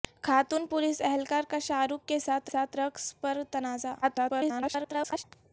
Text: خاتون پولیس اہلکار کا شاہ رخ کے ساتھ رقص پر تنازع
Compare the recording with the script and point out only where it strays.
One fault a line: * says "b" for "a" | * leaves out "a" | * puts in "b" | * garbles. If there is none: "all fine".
* puts in "ساتھ"
* garbles